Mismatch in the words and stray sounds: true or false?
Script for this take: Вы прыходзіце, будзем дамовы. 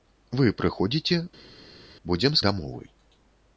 false